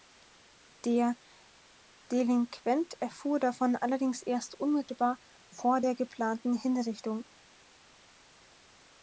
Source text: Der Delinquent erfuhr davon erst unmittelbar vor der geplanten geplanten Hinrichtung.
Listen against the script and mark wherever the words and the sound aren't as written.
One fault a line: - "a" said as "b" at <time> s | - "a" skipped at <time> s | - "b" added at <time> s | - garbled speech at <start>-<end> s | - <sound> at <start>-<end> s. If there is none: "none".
- "allerdings" added at 3.7 s
- "geplanten" skipped at 6.5 s